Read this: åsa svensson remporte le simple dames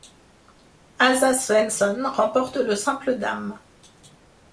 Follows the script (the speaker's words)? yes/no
yes